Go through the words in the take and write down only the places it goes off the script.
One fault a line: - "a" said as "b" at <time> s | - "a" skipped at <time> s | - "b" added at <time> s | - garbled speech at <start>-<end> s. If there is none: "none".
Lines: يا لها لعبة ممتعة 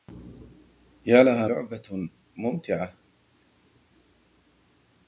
none